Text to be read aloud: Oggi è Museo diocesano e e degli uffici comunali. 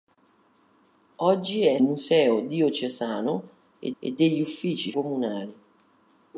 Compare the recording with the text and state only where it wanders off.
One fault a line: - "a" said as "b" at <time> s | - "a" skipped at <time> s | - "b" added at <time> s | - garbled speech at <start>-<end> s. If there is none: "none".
none